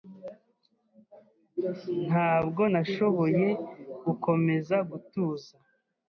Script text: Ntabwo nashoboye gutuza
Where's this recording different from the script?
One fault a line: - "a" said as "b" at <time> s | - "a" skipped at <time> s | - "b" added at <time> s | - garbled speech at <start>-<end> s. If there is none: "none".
- "gukomeza" added at 4.1 s